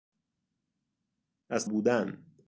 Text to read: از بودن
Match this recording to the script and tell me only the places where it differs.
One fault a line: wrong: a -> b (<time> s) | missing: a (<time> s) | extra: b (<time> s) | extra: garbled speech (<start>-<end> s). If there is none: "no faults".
no faults